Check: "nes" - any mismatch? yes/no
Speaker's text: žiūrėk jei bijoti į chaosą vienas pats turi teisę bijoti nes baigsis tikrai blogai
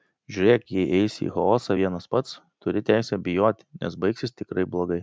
no